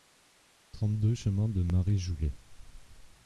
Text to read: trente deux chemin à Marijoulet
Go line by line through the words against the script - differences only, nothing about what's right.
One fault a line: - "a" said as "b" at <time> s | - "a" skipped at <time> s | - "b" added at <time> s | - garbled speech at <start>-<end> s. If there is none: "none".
- "à" said as "de" at 1.5 s